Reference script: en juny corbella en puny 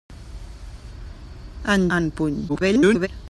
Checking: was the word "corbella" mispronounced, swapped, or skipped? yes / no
yes